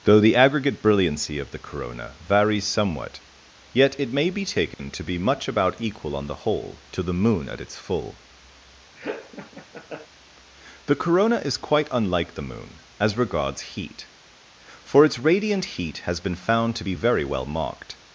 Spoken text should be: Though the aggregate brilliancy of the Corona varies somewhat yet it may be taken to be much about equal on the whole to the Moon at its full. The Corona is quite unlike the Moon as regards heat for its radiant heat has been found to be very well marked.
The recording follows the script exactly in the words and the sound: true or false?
false